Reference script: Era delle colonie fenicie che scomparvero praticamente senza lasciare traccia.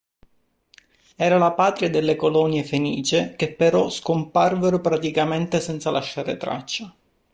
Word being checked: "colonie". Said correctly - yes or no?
yes